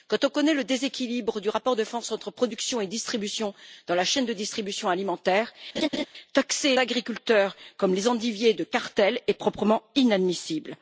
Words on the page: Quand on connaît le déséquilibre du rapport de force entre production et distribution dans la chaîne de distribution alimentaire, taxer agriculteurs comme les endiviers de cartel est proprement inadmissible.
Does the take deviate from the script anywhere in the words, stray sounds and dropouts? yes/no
yes